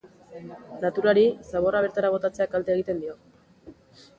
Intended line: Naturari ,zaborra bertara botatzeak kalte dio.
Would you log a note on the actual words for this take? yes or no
yes